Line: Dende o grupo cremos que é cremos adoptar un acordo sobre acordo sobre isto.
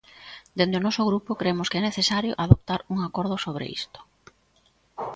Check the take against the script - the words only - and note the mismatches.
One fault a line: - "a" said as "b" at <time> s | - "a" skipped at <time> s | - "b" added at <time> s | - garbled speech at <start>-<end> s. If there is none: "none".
- "noso" added at 0.9 s
- "cremos" said as "necesario" at 1.9 s
- "acordo sobre" skipped at 3.6 s